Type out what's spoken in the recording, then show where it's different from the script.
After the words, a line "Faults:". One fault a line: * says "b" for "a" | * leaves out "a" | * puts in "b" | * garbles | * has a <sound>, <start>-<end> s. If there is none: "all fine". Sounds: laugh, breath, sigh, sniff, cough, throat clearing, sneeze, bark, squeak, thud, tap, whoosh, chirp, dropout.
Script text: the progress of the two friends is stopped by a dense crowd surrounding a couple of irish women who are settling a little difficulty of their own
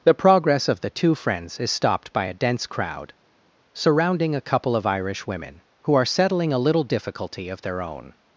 the progress of the two friends is stopped by a dense crowd surrounding a couple of irish women who are settling a little difficulty of their own
Faults:
all fine